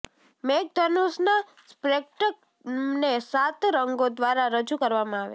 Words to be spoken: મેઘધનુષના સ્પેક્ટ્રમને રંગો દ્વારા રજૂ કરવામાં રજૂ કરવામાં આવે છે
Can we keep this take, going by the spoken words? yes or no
no